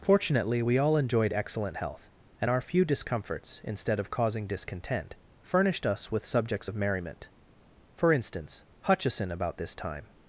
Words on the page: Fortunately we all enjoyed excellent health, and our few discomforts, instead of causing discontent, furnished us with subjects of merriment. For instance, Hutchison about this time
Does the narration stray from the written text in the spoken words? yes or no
no